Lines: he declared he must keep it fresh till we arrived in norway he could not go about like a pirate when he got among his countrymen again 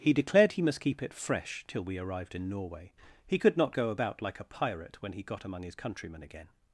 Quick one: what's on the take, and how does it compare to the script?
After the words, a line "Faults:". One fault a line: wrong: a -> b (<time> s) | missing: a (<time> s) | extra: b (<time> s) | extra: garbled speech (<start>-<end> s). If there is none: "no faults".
he declared he must keep it fresh till we arrived in norway he could not go about like a pirate when he got among his countrymen again
Faults:
no faults